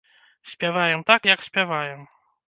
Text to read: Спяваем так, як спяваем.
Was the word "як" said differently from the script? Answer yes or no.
no